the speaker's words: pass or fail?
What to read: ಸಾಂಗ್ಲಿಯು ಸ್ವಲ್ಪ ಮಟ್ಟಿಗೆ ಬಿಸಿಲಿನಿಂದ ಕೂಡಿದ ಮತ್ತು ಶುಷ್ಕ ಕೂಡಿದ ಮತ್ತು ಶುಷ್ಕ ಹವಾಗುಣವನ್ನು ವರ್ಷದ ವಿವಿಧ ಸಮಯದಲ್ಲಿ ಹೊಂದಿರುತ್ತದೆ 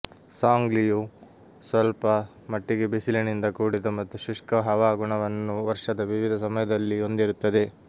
fail